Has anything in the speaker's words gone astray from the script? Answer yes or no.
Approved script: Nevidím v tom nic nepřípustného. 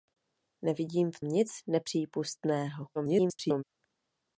yes